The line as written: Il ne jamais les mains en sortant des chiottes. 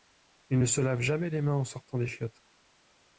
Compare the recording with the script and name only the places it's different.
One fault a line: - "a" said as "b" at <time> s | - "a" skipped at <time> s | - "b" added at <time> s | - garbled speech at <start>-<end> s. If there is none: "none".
- "se lave" added at 0.6 s